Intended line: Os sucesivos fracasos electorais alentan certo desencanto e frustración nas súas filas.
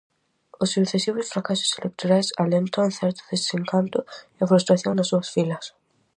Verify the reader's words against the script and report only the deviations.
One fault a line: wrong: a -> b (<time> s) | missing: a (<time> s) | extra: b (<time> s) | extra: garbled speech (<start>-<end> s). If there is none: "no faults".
no faults